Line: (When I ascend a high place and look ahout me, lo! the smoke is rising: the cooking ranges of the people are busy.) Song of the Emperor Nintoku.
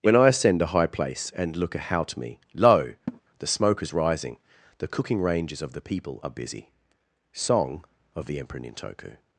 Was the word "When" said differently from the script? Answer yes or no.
no